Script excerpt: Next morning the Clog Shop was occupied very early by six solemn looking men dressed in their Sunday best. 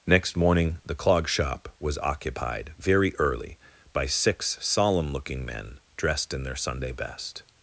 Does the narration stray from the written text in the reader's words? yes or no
no